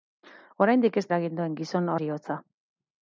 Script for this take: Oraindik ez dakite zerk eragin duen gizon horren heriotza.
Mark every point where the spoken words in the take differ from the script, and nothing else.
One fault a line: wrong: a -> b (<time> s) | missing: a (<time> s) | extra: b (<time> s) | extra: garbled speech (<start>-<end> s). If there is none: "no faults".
missing: dakite zerk (1.0 s)
missing: horren (1.9 s)